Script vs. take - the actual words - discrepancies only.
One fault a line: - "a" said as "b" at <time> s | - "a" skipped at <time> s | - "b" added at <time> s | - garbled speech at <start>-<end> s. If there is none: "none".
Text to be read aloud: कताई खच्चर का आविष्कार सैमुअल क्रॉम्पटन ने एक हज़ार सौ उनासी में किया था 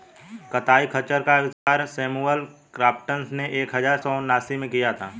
none